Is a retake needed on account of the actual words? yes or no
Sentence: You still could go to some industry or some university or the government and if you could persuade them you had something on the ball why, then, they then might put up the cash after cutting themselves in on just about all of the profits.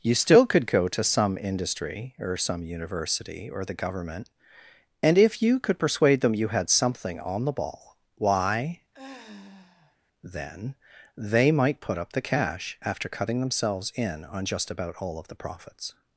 yes